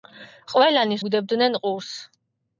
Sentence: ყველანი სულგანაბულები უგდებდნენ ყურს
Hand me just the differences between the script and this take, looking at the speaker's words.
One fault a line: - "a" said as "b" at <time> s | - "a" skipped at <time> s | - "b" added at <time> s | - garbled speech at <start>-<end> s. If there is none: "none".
- "სულგანაბულები" skipped at 1.0 s